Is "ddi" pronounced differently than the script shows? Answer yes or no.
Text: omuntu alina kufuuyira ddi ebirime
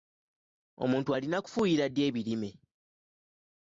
no